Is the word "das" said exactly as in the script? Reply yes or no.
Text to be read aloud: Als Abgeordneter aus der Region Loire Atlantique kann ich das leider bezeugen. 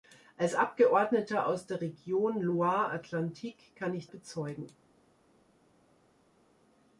no